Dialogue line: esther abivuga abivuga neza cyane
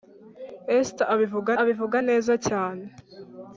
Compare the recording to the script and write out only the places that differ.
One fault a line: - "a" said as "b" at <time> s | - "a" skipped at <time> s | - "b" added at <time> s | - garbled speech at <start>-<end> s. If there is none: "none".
none